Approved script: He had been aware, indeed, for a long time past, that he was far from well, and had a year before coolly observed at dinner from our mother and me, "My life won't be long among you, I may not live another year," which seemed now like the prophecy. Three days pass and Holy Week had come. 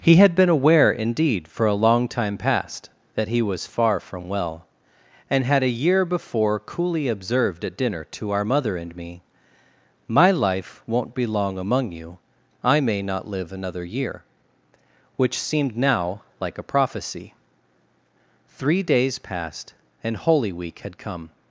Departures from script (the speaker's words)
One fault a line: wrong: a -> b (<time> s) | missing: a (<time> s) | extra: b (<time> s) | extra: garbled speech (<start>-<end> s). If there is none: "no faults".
wrong: from -> to (8.1 s)
wrong: the -> a (16.6 s)
wrong: pass -> passed (19.2 s)